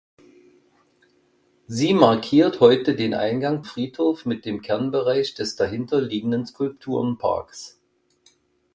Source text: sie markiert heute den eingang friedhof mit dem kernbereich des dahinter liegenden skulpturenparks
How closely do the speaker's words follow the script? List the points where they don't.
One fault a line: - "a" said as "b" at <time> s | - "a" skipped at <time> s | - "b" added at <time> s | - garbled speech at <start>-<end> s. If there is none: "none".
none